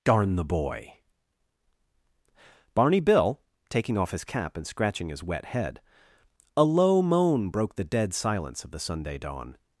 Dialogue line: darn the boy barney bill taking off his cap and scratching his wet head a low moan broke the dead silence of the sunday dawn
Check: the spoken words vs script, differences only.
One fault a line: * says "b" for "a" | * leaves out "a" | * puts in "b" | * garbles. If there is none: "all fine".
all fine